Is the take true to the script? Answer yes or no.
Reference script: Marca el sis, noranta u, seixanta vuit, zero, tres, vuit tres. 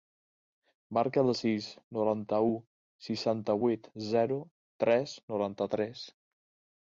no